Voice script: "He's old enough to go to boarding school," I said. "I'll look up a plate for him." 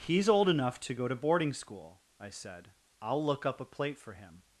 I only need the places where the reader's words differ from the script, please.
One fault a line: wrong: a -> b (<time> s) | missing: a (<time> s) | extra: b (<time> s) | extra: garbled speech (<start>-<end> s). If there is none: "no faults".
no faults